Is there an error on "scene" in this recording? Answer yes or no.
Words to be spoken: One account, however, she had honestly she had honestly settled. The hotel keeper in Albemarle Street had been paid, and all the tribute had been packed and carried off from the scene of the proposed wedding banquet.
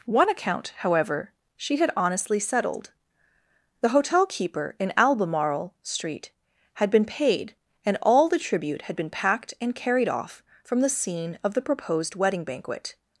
no